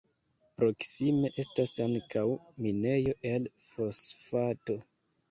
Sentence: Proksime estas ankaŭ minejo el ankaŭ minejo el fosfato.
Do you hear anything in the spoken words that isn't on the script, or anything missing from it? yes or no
yes